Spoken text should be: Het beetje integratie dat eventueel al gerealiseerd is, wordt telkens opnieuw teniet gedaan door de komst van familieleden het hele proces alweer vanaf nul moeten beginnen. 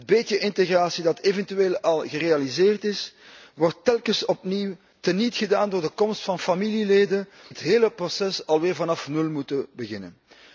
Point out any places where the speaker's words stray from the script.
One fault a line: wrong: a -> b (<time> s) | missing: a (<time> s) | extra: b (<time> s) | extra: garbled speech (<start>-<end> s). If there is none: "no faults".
no faults